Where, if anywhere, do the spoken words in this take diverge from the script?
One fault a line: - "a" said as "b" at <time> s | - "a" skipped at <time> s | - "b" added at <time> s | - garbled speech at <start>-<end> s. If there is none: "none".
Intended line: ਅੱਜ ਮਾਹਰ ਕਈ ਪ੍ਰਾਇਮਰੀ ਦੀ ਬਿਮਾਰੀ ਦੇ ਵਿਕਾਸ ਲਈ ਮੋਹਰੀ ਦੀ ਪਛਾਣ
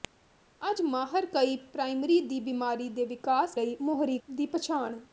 none